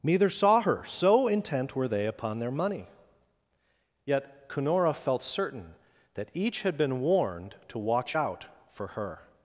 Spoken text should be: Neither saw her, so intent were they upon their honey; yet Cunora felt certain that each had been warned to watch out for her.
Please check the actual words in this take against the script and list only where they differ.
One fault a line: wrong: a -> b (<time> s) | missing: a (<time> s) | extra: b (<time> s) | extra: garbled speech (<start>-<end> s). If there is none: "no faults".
wrong: honey -> money (2.5 s)